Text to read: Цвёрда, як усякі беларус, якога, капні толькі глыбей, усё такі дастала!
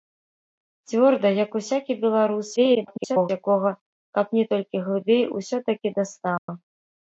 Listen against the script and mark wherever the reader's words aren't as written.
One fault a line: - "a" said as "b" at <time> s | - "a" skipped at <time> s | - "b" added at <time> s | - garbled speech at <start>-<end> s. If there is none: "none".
- garbled speech at 2.6-3.3 s